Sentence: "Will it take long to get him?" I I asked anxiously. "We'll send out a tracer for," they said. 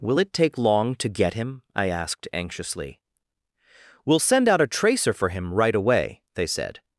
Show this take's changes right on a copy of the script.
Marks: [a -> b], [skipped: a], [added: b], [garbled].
"Will it take long to get him?" I [skipped: I] asked anxiously. "We'll send out a tracer for," [added: him right away] they said.